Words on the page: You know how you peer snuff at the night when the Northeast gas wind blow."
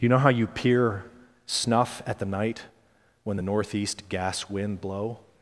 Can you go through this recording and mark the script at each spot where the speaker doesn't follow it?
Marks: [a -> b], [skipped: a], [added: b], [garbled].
You know how you peer snuff at the night when the Northeast gas wind blow."